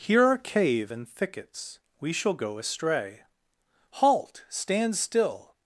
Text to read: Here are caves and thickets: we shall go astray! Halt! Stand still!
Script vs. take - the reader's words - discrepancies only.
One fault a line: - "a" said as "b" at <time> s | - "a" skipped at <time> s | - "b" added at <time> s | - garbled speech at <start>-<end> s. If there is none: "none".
- "caves" said as "cave" at 0.4 s